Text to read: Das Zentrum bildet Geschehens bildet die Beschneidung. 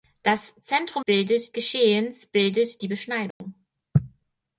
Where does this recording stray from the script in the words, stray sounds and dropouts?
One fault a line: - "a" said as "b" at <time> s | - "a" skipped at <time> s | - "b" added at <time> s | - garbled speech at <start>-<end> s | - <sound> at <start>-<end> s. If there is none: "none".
- dropout at 3.3-3.4 s